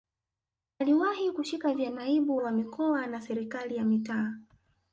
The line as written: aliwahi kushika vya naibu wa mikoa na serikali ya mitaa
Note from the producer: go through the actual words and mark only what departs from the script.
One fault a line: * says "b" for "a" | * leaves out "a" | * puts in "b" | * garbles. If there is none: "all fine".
all fine